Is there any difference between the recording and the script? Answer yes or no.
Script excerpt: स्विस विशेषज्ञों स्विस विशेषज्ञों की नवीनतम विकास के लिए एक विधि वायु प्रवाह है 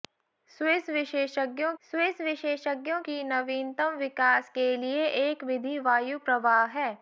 no